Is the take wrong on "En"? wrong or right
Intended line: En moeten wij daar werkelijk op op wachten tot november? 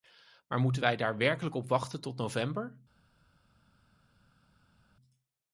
wrong